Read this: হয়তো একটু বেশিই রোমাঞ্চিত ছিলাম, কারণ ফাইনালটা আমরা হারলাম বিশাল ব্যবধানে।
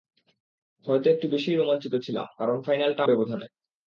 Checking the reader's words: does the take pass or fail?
fail